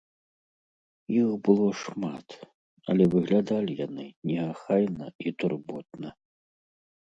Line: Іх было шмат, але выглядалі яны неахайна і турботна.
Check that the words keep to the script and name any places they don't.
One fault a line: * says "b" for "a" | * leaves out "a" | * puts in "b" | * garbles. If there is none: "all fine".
all fine